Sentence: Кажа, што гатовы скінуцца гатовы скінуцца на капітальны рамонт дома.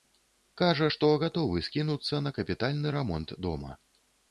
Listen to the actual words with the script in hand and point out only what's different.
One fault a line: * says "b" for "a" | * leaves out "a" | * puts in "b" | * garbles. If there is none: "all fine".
* leaves out "гатовы скінуцца"